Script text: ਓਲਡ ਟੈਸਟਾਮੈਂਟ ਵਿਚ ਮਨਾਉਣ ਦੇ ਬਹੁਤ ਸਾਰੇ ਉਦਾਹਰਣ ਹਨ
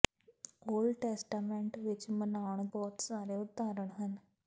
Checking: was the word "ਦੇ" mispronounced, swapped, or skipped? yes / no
yes